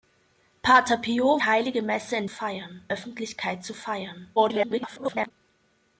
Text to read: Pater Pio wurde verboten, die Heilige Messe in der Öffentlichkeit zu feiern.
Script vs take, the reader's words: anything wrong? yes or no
yes